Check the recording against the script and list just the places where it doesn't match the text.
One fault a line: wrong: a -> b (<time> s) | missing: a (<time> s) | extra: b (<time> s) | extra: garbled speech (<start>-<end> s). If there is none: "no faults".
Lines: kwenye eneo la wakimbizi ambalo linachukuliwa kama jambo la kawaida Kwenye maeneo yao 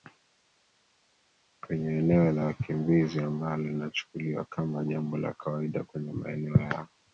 no faults